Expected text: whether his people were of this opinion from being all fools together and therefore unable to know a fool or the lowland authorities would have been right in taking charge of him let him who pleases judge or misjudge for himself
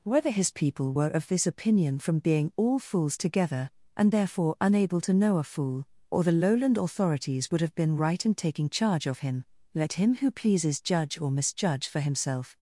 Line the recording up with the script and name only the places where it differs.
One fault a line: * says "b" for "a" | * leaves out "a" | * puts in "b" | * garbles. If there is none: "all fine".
all fine